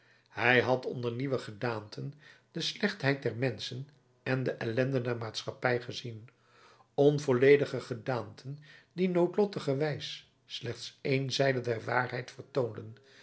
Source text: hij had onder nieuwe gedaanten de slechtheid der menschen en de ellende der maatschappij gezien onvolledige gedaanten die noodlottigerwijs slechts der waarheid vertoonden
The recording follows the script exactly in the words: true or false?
false